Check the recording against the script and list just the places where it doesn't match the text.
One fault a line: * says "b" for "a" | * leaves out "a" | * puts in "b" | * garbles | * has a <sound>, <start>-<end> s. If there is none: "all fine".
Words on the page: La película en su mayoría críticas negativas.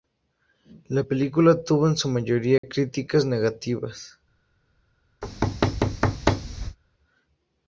* puts in "tuvo"
* has a dropout, 2.6-2.6 s
* has a thud, 5.2-6.8 s